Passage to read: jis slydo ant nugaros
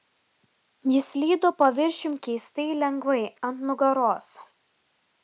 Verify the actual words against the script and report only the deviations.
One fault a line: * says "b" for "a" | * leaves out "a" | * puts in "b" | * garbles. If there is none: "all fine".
* puts in "paviršium keistai lengvai"